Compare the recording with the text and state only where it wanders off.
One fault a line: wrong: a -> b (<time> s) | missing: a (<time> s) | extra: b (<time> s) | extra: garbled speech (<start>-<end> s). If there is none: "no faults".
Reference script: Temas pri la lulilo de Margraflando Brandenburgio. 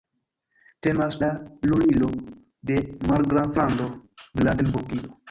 missing: pri (1.2 s)